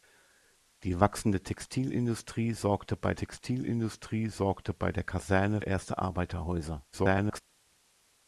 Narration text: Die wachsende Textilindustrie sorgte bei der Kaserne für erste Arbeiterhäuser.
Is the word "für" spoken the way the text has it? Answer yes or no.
no